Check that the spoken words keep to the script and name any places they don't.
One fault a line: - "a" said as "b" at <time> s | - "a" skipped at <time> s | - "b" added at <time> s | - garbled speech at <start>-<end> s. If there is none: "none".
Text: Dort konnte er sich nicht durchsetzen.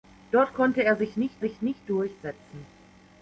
- "sich nicht" added at 1.4 s